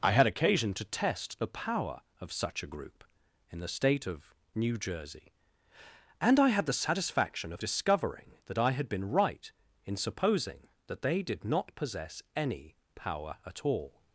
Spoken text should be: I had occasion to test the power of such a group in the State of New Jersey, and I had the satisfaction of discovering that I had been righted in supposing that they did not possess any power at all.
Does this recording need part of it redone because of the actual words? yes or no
yes